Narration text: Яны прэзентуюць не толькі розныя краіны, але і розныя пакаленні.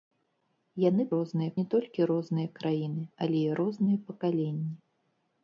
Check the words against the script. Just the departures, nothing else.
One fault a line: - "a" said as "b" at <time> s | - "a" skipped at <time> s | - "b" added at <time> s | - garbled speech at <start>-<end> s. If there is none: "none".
- "прэзентуюць" said as "розныя" at 1.2 s